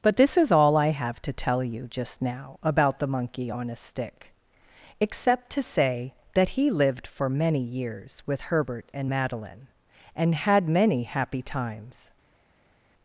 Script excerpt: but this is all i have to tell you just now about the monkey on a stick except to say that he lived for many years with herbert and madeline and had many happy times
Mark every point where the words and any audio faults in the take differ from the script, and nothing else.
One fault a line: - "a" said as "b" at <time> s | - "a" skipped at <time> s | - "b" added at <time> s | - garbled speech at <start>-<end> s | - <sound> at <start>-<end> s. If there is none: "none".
none